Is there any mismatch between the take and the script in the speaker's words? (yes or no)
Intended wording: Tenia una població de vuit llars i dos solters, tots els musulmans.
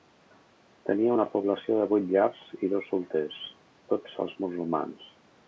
no